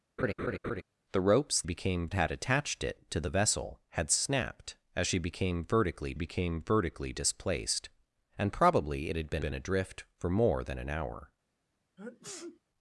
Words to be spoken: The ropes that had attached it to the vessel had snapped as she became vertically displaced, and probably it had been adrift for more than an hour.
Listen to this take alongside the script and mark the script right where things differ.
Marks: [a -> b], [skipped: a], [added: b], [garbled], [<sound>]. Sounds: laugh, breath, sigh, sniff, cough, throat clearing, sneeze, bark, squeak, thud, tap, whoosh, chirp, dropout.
[laugh] The ropes [that -> became] had attached it to the vessel had snapped as she became vertically [added: became vertically] displaced, and probably it had been [added: been] adrift for more than an hour. [sneeze]